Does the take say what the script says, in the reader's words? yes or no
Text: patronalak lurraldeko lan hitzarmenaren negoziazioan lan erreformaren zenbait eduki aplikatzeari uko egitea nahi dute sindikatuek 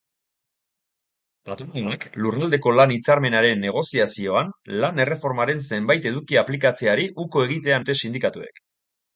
no